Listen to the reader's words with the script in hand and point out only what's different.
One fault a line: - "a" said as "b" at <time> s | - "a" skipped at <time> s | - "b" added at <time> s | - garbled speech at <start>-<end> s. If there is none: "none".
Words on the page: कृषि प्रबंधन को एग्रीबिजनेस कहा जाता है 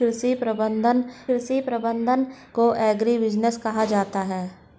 - "कृषि प्रबंधन" added at 1.3 s